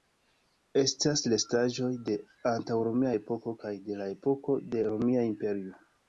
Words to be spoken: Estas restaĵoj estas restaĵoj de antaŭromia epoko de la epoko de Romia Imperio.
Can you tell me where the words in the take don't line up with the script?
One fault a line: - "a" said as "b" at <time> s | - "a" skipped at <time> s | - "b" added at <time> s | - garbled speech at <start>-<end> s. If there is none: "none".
- "estas restaĵoj" skipped at 1.9 s
- "kaj" added at 3.6 s